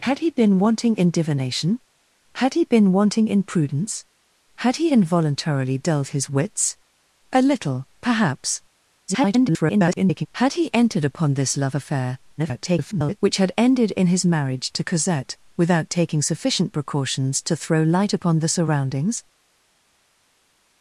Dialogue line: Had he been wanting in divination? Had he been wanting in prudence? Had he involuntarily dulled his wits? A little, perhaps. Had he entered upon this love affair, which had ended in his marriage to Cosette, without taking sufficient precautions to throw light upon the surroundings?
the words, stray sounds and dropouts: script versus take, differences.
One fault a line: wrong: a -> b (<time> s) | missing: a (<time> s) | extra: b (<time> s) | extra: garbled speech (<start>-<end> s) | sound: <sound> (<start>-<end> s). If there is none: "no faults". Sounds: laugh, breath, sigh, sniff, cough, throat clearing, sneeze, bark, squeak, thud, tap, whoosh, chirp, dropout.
extra: garbled speech (9.1-10.3 s)
extra: garbled speech (12.4-13.2 s)